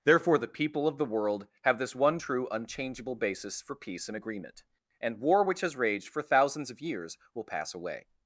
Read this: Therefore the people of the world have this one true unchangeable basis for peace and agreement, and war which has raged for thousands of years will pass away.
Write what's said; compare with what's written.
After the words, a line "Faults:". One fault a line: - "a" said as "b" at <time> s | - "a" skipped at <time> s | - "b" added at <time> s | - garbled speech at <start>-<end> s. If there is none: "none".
Therefore the people of the world have this one true unchangeable basis for peace and agreement, and war which has raged for thousands of years will pass away.
Faults:
none